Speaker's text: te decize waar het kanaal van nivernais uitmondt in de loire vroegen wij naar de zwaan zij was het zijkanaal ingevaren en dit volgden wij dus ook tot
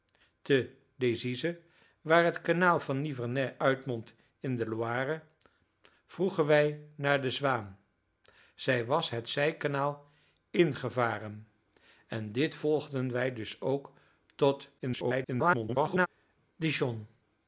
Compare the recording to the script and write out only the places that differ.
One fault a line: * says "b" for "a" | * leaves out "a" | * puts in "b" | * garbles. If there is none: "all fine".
* garbles